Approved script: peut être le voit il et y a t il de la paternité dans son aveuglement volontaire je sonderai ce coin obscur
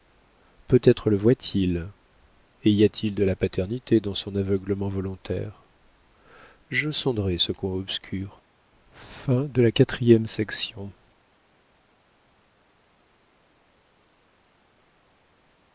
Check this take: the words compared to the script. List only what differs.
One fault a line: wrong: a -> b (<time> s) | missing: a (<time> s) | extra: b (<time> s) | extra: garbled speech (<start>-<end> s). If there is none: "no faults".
no faults